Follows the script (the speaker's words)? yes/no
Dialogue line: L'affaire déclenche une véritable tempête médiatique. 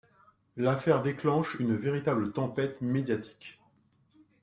yes